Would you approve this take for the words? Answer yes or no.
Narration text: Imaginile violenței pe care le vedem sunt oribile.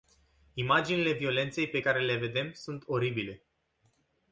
yes